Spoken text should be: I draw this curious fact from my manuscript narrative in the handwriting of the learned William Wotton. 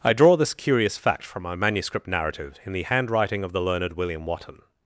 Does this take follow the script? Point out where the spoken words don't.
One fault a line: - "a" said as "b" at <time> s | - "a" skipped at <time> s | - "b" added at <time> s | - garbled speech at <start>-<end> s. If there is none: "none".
none